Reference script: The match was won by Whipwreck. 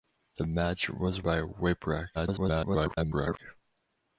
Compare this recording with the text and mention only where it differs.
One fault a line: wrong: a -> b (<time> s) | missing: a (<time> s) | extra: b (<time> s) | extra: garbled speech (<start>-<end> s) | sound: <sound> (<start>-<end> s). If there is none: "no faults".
missing: won (1.2 s)
extra: garbled speech (2.1-3.4 s)